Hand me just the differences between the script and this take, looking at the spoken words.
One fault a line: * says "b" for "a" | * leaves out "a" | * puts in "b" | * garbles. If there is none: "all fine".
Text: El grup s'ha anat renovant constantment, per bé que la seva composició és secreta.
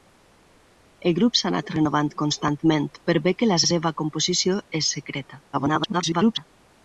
* puts in "la"
* garbles